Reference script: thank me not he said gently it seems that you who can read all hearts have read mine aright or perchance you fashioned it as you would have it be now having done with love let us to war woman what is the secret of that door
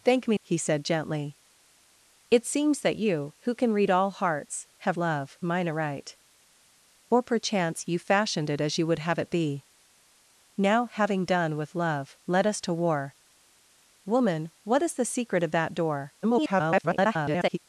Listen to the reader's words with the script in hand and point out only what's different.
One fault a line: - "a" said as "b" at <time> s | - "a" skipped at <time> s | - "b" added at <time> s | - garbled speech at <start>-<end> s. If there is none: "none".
- "not" skipped at 0.4 s
- "read" said as "love" at 5.0 s
- garbled speech at 16.2-17.6 s